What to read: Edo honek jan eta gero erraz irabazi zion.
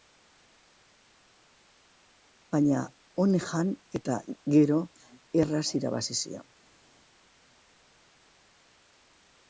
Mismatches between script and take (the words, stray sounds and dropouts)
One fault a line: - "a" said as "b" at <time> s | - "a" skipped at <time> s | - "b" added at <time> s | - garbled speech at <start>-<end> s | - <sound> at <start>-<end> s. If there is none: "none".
- "Edo" said as "Baina" at 2.5 s